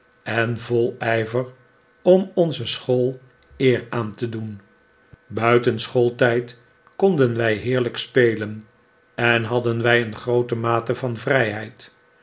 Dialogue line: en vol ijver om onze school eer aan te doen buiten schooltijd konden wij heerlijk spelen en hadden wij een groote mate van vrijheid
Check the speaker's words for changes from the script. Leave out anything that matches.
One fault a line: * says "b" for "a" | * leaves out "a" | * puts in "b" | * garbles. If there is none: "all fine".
all fine